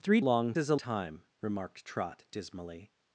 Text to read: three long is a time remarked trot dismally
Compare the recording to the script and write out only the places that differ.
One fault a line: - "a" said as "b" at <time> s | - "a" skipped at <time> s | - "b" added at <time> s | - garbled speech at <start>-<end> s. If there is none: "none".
none